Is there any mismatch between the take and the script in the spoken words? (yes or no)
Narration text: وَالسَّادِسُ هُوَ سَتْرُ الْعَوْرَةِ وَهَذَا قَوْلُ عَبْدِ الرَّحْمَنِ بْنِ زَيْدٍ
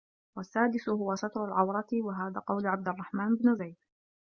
no